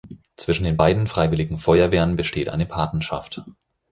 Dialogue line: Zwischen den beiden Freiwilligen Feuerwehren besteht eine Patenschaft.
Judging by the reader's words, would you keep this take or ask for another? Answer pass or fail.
pass